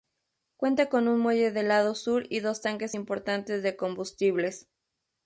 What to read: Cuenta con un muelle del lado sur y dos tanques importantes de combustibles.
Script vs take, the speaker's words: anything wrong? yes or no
no